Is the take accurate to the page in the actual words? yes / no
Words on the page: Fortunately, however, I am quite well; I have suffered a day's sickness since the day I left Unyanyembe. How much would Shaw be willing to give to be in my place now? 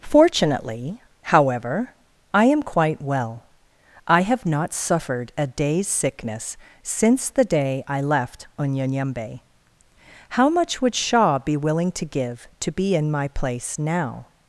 no